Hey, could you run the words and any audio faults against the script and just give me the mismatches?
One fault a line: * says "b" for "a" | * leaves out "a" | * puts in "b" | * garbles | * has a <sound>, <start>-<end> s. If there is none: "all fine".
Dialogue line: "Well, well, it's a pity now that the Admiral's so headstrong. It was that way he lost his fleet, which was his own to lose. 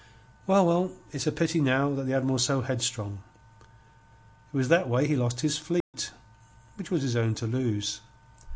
* has a dropout, 5.8-5.9 s